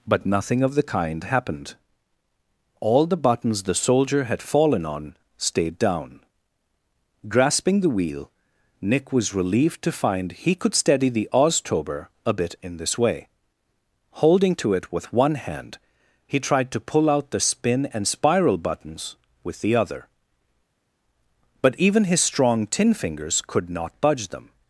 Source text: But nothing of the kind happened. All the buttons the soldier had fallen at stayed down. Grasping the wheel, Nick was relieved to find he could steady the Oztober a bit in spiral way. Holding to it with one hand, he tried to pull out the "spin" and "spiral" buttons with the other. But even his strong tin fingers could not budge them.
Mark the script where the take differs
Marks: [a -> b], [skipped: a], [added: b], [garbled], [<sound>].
But nothing of the kind happened. All the buttons the soldier had fallen [at -> on] stayed down. Grasping the wheel, Nick was relieved to find he could steady the Oztober a bit in [spiral -> this] way. Holding to it with one hand, he tried to pull out the "spin" and "spiral" buttons with the other. But even his strong tin fingers could not budge them.